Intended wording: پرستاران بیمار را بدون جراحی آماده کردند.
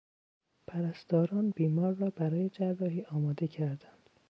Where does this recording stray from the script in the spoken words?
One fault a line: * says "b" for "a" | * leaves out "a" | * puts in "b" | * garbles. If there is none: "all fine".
* says "برای" for "بدون"